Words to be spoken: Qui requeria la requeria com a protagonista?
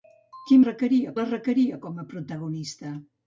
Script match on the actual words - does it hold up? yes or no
yes